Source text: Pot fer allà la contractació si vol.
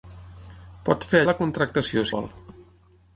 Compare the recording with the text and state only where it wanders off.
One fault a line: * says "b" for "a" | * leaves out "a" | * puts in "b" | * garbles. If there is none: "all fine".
* leaves out "allà"
* leaves out "si"